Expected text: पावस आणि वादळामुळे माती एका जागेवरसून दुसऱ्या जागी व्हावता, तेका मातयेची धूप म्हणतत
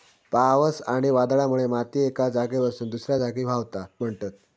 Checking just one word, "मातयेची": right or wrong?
wrong